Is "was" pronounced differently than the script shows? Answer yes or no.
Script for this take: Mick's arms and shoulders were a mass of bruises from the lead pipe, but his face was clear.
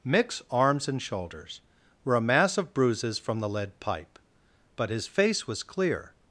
no